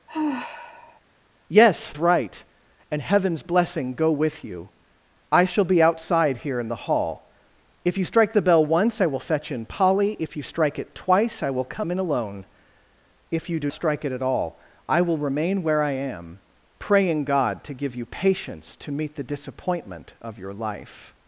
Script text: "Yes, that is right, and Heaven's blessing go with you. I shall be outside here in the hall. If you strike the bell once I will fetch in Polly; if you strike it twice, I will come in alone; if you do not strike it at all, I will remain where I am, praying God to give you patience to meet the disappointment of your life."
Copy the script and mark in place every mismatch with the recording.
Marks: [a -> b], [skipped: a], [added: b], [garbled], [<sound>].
[sigh] "Yes, [skipped: that is] right, and Heaven's blessing go with you. I shall be outside here in the hall. If you strike the bell once I will fetch in Polly; if you strike it twice, I will come in alone; if you do [skipped: not] strike it at all, I will remain where I am, praying God to give you patience to meet the disappointment of your life."